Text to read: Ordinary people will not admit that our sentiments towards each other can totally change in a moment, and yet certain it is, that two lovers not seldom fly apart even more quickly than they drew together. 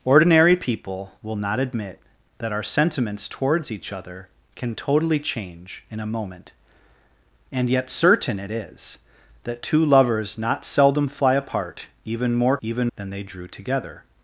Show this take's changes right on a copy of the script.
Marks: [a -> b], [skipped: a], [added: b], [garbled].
Ordinary people will not admit that our sentiments towards each other can totally change in a moment, and yet certain it is, that two lovers not seldom fly apart even more [quickly -> even] than they drew together.